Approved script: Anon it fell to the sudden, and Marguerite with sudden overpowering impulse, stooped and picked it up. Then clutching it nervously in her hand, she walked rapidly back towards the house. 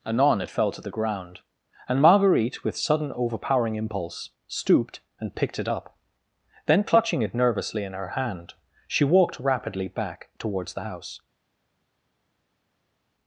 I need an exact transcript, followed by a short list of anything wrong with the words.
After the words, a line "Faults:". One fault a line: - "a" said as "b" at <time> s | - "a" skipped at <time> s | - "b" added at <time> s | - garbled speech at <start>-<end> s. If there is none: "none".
Anon it fell to the ground, and Marguerite with sudden overpowering impulse, stooped and picked it up. Then clutching it nervously in her hand, she walked rapidly back towards the house.
Faults:
- "sudden" said as "ground" at 0.9 s